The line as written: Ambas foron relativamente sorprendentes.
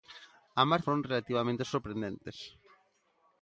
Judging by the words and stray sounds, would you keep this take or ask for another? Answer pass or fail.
pass